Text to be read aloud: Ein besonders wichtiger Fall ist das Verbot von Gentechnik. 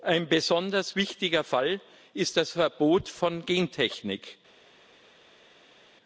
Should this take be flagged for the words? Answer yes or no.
no